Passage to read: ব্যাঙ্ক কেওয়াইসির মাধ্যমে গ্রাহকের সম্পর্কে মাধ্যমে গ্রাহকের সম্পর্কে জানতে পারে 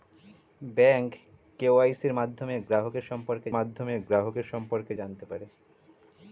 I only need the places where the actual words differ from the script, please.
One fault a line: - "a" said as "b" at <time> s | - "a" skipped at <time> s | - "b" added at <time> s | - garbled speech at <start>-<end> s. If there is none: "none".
none